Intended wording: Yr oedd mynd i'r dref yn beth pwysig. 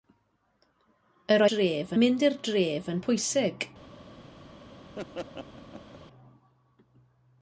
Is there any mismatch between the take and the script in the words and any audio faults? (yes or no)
yes